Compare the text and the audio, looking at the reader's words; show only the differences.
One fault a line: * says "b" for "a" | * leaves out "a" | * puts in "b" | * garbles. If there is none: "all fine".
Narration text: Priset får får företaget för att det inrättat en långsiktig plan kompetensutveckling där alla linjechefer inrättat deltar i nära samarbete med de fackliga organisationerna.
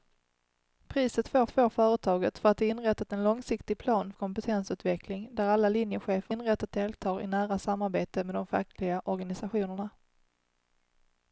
all fine